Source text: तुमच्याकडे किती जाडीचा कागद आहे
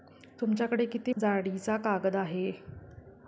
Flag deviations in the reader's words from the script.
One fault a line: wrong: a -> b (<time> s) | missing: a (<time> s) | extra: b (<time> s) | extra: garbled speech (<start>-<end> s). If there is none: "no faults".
no faults